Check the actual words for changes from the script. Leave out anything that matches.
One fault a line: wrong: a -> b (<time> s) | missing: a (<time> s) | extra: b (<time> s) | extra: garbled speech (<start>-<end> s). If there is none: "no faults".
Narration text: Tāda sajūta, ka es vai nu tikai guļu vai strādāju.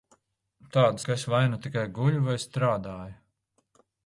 missing: sajūta (1.0 s)